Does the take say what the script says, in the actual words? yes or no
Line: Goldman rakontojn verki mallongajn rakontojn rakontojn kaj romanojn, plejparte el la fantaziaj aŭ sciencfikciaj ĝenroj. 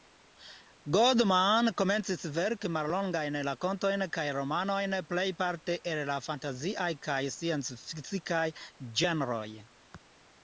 no